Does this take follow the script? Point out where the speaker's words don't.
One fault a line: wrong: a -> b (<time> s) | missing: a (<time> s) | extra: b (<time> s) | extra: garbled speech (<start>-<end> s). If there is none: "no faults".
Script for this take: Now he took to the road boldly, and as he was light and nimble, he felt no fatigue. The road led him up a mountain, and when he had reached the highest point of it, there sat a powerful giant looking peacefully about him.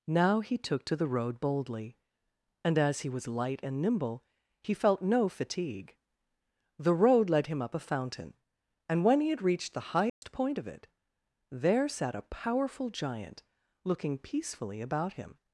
wrong: mountain -> fountain (7.8 s)